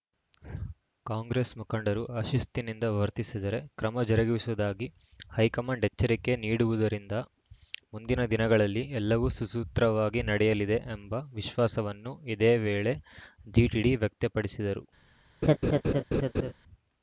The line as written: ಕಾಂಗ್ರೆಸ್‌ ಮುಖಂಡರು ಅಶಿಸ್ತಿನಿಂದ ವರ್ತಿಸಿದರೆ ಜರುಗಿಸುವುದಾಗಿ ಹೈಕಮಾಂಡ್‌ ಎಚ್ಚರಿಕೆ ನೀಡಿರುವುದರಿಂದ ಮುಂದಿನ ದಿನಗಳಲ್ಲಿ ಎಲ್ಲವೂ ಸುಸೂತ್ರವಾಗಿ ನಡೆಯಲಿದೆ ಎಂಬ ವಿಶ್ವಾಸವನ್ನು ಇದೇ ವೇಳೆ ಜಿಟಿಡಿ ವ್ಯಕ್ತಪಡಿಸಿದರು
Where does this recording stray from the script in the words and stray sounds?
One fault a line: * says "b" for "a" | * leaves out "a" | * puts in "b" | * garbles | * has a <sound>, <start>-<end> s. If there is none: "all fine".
* puts in "ಕ್ರಮ"
* has a laugh, 15.4-16.5 s